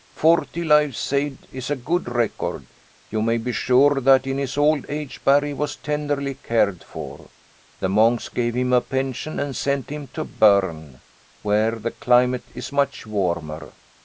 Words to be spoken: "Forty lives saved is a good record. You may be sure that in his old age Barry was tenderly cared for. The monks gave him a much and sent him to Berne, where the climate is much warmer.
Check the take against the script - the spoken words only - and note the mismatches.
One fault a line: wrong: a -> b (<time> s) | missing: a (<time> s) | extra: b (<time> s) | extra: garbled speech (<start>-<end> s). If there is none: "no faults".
wrong: much -> pension (8.8 s)